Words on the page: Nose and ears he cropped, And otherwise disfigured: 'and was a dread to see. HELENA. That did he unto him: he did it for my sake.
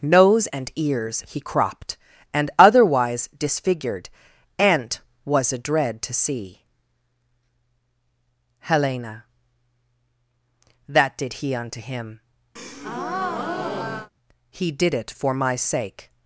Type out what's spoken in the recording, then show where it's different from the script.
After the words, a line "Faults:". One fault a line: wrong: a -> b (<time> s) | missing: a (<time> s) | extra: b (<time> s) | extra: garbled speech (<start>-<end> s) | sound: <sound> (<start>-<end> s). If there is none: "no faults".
Nose and ears he cropped, And otherwise disfigured: 'and was a dread to see. HELENA. That did he unto him: he did it for my sake.
Faults:
sound: breath (12.6-14.1 s)